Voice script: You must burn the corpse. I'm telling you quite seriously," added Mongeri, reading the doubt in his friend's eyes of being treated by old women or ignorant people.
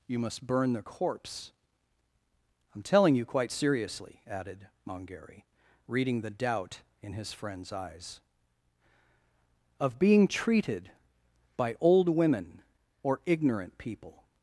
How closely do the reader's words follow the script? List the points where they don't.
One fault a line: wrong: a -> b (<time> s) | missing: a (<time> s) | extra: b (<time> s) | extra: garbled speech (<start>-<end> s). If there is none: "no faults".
no faults